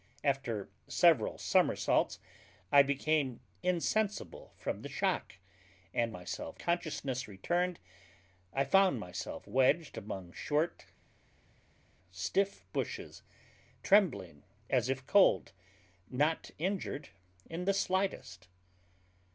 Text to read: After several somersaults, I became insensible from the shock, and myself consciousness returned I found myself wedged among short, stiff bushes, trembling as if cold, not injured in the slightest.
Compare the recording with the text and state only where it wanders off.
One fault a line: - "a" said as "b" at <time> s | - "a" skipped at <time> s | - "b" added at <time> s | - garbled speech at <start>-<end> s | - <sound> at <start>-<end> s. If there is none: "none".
none